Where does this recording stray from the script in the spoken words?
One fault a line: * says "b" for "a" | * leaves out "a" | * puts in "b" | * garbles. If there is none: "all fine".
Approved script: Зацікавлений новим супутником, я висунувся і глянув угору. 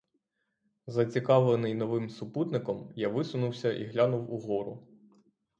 all fine